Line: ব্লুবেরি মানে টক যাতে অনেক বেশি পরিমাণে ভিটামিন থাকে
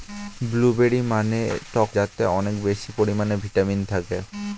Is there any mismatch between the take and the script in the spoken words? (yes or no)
no